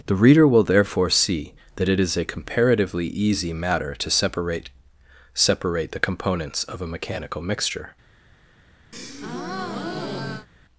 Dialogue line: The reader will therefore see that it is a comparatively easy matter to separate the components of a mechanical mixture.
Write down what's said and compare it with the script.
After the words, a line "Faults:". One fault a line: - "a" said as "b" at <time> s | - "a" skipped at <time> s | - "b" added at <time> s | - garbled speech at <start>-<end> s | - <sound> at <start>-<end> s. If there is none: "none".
The reader will therefore see that it is a comparatively easy matter to separate separate the components of a mechanical mixture.
Faults:
- "separate" added at 5.3 s
- breath at 8.9-10.5 s